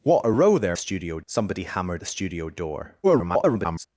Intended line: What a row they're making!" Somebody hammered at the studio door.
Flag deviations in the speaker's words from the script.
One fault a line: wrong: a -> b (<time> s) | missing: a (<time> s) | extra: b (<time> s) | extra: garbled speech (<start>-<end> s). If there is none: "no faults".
wrong: making -> studio (0.7 s)
missing: at (2.0 s)
extra: garbled speech (3.0-3.9 s)